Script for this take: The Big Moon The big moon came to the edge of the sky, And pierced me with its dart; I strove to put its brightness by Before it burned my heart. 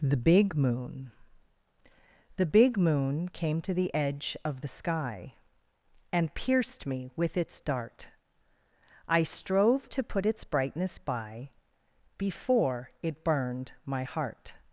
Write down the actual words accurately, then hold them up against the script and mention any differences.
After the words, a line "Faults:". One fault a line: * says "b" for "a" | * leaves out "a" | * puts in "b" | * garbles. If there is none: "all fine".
The Big Moon The big moon came to the edge of the sky, And pierced me with its dart; I strove to put its brightness by Before it burned my heart.
Faults:
all fine